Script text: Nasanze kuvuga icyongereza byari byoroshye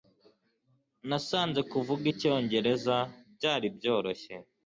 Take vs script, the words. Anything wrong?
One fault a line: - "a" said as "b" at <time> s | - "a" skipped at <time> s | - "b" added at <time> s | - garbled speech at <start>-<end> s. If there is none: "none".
none